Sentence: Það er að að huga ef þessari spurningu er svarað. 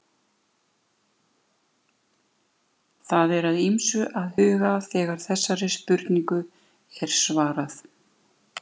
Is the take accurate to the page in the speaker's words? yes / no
no